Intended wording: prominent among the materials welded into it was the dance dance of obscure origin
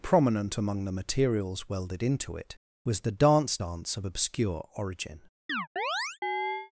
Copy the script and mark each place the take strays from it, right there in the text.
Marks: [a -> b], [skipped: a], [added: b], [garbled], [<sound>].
prominent among the materials welded into it was the dance dance of obscure origin [chirp]